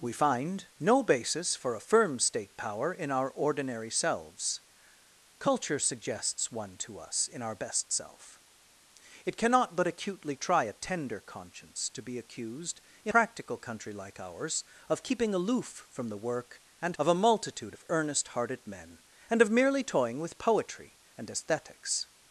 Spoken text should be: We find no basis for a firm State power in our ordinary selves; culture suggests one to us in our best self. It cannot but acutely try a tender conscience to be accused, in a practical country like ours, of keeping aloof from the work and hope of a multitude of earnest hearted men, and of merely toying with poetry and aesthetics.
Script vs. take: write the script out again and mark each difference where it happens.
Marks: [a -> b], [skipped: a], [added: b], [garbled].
We find no basis for a firm State power in our ordinary selves; culture suggests one to us in our best self. It cannot but acutely try a tender conscience to be accused, in [skipped: a] practical country like ours, of keeping aloof from the work and [skipped: hope] of a multitude of earnest hearted men, and of merely toying with poetry and aesthetics.